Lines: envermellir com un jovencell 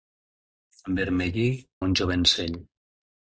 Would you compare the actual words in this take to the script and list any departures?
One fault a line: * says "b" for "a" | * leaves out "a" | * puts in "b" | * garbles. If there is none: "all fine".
* leaves out "com"